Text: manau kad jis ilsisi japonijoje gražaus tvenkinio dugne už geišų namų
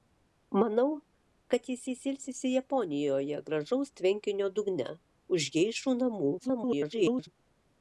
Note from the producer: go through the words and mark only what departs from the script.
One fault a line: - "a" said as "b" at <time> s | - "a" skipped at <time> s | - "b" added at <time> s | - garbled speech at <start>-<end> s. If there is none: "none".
- "jis" added at 1.9 s
- garbled speech at 6.4-7.3 s